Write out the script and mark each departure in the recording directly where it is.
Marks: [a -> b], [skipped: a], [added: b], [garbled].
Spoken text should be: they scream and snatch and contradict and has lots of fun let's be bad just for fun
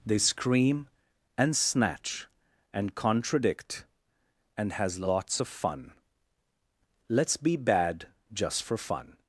they scream and snatch and contradict and has lots of fun let's be bad just for fun